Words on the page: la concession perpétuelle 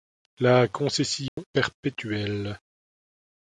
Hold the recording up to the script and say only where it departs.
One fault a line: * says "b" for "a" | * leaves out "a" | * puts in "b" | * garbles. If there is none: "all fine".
all fine